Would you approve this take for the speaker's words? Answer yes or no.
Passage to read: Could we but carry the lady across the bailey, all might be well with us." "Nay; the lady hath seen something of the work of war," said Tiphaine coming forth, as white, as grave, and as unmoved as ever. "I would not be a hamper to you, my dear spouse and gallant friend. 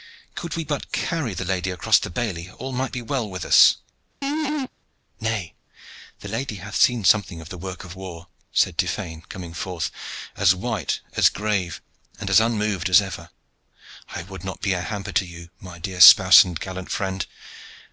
yes